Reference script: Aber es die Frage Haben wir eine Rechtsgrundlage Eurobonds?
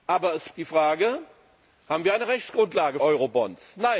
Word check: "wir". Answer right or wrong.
right